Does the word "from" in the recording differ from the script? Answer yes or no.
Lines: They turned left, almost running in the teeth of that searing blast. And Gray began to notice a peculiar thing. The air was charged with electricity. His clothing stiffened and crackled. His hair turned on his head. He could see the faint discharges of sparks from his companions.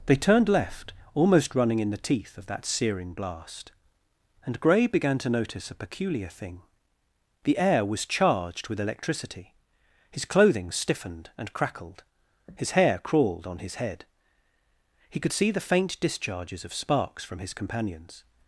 no